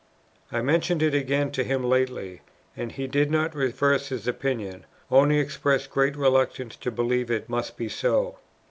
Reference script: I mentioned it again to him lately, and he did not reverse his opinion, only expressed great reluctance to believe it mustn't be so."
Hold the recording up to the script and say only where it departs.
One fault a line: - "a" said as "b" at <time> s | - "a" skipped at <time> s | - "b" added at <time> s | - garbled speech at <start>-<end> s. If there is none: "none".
- "mustn't" said as "must" at 7.5 s